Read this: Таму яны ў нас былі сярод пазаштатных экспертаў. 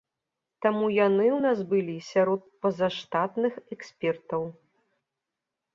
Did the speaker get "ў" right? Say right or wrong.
right